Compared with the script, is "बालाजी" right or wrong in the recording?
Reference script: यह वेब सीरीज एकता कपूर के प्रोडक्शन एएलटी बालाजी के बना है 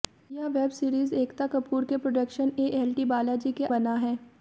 right